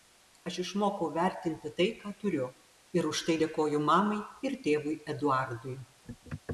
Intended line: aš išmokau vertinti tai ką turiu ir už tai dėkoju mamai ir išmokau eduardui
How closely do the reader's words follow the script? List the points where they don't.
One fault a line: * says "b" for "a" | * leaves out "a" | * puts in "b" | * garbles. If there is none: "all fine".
* says "tėvui" for "išmokau"